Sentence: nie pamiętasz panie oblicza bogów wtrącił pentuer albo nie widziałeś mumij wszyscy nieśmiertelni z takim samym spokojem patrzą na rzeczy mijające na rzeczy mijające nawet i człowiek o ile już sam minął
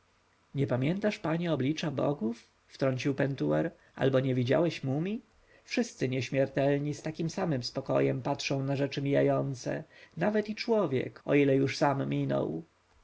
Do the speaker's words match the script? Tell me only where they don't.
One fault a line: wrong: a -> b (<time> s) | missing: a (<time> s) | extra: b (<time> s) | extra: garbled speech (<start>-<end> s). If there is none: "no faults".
missing: na rzeczy mijające (9.8 s)